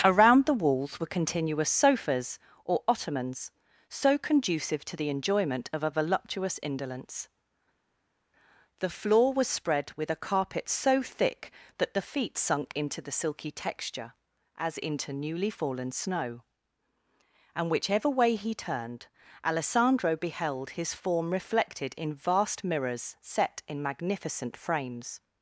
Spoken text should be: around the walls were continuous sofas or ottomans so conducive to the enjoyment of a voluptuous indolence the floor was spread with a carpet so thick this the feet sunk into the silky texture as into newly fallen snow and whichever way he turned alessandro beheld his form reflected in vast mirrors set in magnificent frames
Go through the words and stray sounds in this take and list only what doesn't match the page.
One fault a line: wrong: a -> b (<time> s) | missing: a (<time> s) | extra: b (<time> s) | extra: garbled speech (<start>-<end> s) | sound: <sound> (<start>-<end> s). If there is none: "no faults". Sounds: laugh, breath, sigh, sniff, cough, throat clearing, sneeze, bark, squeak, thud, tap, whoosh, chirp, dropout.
wrong: this -> that (11.8 s)